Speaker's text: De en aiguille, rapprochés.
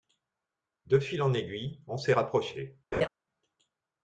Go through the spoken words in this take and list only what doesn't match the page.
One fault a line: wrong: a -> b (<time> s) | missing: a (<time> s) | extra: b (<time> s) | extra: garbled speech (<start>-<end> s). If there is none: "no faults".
extra: fil (1.0 s)
extra: on s'est (1.8 s)